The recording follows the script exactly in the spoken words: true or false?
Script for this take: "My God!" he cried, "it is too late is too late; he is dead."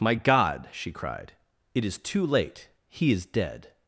false